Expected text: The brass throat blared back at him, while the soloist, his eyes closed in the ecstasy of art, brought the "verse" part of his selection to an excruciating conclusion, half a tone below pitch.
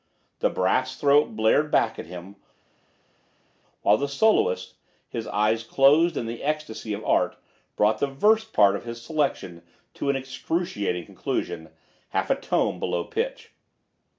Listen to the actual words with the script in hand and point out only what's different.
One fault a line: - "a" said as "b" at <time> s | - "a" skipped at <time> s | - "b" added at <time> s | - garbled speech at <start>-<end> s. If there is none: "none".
none